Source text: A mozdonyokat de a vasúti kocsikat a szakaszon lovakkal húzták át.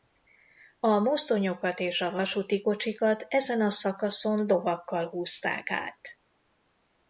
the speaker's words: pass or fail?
fail